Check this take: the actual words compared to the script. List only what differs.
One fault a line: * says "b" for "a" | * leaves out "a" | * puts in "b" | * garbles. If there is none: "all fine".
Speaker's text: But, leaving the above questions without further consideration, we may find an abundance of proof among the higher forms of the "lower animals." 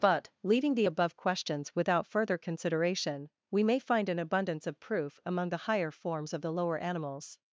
all fine